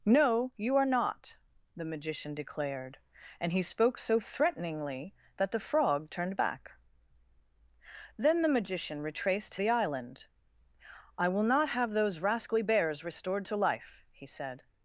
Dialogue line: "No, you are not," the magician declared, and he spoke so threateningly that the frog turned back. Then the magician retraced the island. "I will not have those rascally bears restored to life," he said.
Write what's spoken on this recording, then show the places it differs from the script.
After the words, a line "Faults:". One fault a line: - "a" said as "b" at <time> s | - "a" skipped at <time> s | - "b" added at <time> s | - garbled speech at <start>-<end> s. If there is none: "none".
"No, you are not," the magician declared, and he spoke so threateningly that the frog turned back. Then the magician retraced the island. "I will not have those rascally bears restored to life," he said.
Faults:
none